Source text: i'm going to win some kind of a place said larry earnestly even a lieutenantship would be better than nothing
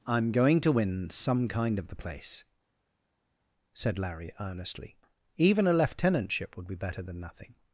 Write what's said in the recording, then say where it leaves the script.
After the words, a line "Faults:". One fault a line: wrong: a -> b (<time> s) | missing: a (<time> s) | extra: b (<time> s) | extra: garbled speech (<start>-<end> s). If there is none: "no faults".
i'm going to win some kind of the place said larry earnestly even a lieutenantship would be better than nothing
Faults:
wrong: a -> the (1.9 s)